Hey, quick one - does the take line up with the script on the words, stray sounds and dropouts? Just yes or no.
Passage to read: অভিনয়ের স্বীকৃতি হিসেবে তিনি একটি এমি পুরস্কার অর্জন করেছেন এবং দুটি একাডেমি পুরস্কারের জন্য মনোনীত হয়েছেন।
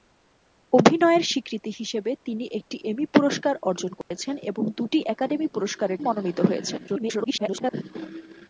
no